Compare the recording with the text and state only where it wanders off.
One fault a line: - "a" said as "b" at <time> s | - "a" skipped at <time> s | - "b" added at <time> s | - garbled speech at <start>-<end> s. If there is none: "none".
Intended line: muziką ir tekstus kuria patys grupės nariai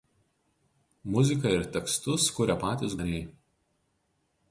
- "grupės" skipped at 3.0 s